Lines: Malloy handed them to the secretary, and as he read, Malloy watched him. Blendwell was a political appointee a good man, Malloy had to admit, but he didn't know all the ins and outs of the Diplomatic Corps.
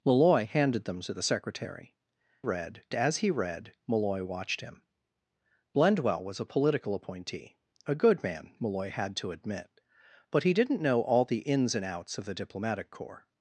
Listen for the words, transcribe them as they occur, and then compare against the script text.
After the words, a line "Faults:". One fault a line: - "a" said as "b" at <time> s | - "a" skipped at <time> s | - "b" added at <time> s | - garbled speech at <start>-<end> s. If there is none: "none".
Malloy handed them to the secretary, read as he read, Malloy watched him. Blendwell was a political appointee a good man, Malloy had to admit, but he didn't know all the ins and outs of the Diplomatic Corps.
Faults:
- "and" said as "read" at 2.4 s